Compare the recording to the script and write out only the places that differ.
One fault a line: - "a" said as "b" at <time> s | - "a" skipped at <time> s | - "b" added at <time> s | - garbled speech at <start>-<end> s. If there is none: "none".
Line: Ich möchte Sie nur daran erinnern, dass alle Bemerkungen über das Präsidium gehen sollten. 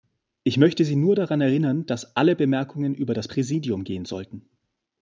none